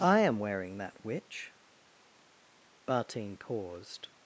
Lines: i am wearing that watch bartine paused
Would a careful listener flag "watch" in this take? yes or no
yes